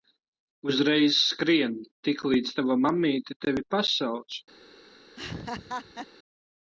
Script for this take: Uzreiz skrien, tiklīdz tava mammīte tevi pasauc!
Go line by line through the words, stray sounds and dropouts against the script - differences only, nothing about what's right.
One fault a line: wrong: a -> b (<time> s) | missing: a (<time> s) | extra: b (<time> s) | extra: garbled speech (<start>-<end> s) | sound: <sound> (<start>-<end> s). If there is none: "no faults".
sound: laugh (5.2-6.1 s)